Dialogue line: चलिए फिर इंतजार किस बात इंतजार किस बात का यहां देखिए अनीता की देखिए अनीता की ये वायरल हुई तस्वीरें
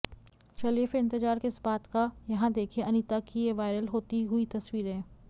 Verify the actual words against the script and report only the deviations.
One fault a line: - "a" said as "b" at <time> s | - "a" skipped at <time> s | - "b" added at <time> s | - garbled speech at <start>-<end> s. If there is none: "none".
- "इंतजार किस बात" skipped at 1.9 s
- "देखिए अनीता की" skipped at 3.5 s
- "होती" added at 3.9 s